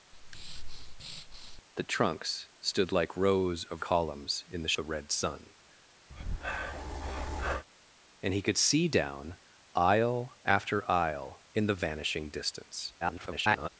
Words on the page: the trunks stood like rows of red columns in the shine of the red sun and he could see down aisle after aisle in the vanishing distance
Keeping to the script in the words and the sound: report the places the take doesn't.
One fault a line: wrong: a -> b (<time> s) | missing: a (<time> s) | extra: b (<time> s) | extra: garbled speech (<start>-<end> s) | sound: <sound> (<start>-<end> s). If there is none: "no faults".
sound: breath (0.1-1.6 s)
missing: red (3.8 s)
missing: shine of (4.7 s)
sound: breath (6.1-7.6 s)
extra: garbled speech (13.0-13.7 s)